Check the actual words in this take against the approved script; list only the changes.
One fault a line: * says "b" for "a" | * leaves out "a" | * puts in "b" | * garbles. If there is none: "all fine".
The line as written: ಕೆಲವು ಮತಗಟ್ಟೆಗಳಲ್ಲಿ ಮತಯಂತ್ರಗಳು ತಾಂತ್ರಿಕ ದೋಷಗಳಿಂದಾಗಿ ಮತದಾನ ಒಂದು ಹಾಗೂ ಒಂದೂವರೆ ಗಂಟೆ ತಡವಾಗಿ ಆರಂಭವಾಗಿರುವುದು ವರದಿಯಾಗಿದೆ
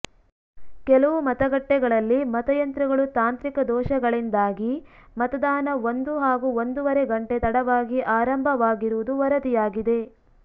all fine